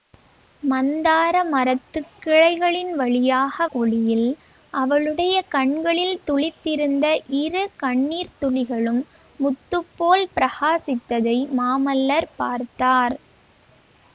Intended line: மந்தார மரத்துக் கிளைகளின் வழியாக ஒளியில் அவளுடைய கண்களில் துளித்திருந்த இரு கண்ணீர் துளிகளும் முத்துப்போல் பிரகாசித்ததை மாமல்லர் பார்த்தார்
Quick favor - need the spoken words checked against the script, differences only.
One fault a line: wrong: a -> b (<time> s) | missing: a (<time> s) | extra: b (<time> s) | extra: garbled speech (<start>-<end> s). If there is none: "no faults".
no faults